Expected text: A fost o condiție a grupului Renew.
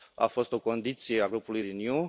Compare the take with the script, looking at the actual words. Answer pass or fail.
pass